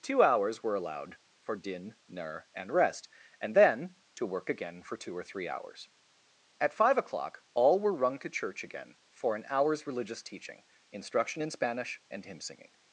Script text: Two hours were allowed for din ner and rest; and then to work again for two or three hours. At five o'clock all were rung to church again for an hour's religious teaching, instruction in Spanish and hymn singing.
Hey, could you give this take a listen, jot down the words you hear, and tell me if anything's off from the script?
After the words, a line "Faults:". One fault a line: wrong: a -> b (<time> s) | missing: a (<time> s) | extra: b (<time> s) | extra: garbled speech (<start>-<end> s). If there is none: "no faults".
Two hours were allowed for din ner and rest; and then to work again for two or three hours. At five o'clock all were rung to church again for an hour's religious teaching, instruction in Spanish and hymn singing.
Faults:
no faults